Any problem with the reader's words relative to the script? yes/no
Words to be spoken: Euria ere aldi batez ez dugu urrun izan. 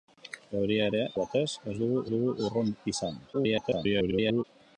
yes